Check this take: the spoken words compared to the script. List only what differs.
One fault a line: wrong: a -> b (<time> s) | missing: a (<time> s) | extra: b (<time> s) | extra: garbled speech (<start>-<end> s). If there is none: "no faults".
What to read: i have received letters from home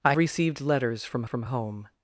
missing: have (0.1 s)
extra: from (1.2 s)